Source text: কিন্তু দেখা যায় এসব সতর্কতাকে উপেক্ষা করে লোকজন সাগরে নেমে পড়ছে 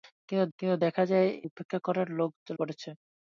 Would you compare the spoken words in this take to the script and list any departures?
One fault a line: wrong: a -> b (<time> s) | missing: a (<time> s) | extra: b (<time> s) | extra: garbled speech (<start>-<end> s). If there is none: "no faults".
extra: কিন্তু (0.6 s)
missing: এসব সতর্কতাকে (1.3 s)
missing: লোকজন সাগরে নেমে (2.0 s)